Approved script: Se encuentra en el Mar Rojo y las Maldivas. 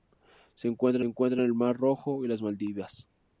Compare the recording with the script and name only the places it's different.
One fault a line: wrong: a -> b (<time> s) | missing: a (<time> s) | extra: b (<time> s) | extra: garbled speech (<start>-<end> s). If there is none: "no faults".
extra: encuentra (1.0 s)